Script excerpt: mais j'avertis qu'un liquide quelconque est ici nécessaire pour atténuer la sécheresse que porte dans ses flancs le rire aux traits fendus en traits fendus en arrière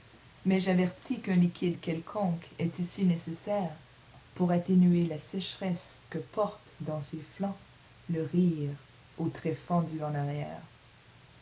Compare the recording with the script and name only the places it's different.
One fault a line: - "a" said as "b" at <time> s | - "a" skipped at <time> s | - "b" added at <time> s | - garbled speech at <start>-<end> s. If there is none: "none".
- "traits fendus en" skipped at 10.2 s